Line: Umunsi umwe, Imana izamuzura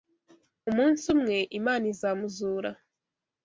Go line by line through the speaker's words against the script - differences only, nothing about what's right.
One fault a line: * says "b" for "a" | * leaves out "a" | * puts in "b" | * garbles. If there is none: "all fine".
all fine